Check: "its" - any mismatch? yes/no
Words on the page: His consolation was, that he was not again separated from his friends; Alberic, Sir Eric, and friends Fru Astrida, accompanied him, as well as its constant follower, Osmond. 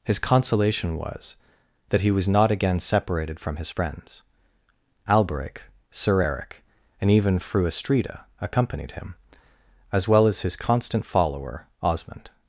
yes